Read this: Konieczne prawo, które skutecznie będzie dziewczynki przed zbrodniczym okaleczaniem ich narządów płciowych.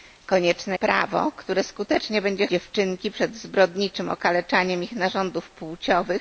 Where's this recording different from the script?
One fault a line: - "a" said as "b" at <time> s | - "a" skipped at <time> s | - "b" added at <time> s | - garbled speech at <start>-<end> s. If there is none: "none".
none